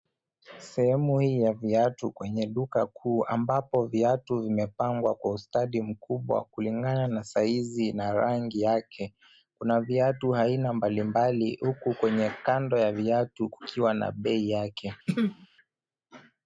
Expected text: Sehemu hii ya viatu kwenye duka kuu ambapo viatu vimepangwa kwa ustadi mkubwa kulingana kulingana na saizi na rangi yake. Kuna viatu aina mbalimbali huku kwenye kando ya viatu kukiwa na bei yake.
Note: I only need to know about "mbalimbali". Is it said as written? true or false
true